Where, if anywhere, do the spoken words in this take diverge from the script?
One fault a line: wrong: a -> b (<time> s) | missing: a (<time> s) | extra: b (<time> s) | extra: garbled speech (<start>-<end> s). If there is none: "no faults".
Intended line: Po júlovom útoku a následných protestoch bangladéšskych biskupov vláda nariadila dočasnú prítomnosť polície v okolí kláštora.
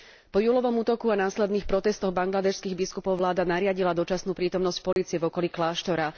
no faults